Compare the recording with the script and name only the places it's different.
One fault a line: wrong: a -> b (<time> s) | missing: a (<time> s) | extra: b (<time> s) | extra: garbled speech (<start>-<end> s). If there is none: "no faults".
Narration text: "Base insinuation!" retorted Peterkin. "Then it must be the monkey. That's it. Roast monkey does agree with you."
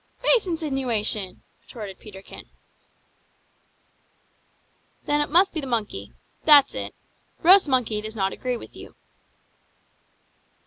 extra: not (8.1 s)